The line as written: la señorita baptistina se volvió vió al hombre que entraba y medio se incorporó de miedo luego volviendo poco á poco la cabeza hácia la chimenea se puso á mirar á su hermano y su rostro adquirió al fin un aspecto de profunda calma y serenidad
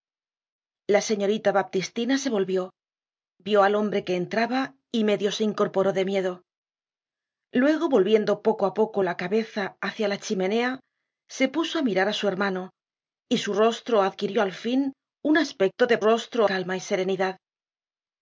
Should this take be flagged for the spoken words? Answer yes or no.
yes